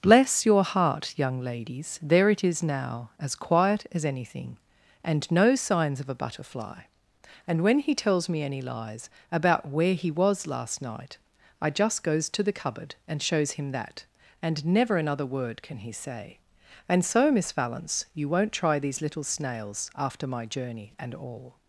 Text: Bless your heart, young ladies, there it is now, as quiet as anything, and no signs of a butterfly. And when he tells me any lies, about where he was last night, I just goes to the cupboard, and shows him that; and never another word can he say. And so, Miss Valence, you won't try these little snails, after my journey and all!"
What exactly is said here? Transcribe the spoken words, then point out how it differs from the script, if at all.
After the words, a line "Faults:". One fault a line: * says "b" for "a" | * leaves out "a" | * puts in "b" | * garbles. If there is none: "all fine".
Bless your heart, young ladies, there it is now, as quiet as anything, and no signs of a butterfly. And when he tells me any lies, about where he was last night, I just goes to the cupboard, and shows him that; and never another word can he say. And so, Miss Valence, you won't try these little snails, after my journey and all!"
Faults:
all fine